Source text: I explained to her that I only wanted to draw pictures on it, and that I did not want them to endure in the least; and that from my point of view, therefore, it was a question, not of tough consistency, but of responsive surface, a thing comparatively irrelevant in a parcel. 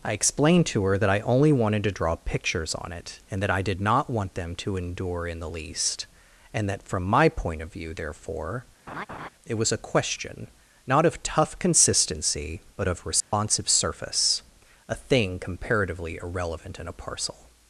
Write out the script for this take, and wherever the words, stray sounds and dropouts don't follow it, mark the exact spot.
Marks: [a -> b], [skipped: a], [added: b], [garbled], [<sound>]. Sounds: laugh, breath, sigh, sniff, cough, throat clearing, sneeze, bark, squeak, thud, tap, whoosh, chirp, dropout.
I explained to her that I only wanted to draw pictures on it, and that I did not want them to endure in the least; and that from my point of view, therefore, [laugh] it was a question, not of tough consistency, but of responsive [dropout] surface, a thing comparatively irrelevant in a parcel.